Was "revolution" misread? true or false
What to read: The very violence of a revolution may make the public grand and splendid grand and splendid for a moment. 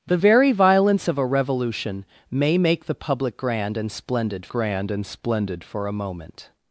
false